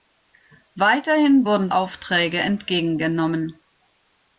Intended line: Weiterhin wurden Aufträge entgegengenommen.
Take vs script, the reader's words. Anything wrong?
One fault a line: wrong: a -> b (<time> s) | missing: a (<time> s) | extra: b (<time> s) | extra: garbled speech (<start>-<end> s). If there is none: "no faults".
no faults